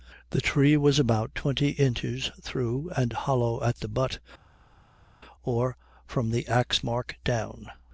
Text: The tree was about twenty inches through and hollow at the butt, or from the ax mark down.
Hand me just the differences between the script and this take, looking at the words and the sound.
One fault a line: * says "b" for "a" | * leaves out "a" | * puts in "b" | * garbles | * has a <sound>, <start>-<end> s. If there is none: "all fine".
all fine